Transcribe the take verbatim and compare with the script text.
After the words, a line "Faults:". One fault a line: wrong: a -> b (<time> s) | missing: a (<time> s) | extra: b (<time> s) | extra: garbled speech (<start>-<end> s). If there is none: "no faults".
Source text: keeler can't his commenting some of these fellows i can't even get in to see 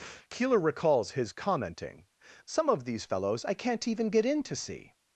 keeler recalls his commenting some of these fellows i can't even get in to see
Faults:
wrong: can't -> recalls (0.6 s)